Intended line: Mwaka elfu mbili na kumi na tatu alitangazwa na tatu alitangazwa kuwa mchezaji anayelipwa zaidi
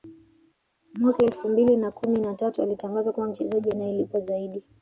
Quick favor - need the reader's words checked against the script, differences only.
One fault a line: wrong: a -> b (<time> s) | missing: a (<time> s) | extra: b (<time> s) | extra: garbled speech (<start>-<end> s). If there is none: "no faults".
missing: na tatu alitangazwa (3.1 s)